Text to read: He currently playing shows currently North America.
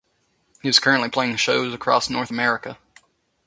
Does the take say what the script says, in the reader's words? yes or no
no